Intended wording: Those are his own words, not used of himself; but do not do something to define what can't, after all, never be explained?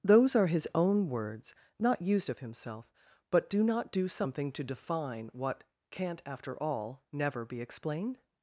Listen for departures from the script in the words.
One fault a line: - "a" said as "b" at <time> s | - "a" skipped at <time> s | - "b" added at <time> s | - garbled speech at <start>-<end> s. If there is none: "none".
none